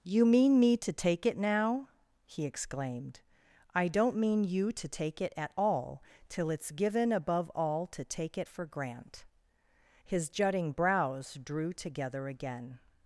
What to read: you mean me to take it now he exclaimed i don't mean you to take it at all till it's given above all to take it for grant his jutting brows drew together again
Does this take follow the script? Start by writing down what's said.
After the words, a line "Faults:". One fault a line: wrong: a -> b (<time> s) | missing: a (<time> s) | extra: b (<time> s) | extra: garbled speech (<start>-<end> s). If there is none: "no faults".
you mean me to take it now he exclaimed i don't mean you to take it at all till it's given above all to take it for grant his jutting brows drew together again
Faults:
no faults